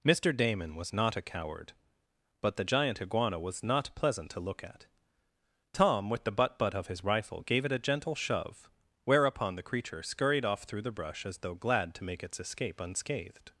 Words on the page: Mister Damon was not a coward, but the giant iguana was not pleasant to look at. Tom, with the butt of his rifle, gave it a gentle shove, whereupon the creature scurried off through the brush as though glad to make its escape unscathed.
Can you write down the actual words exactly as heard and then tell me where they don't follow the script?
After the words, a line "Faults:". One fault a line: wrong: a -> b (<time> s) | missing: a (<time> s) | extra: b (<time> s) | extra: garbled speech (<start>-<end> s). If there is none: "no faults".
Mister Damon was not a coward, but the giant iguana was not pleasant to look at. Tom, with the butt butt of his rifle, gave it a gentle shove, whereupon the creature scurried off through the brush as though glad to make its escape unscathed.
Faults:
extra: butt (6.6 s)